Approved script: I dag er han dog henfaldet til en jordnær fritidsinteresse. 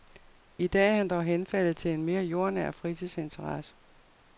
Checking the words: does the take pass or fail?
fail